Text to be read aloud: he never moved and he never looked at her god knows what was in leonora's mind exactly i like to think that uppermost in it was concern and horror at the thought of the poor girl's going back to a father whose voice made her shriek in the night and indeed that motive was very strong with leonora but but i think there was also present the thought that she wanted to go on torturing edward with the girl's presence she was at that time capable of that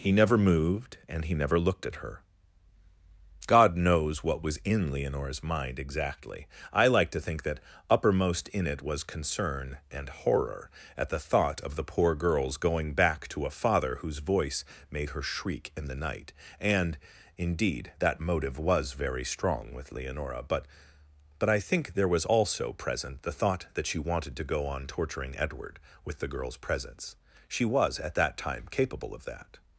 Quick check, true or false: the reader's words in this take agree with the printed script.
true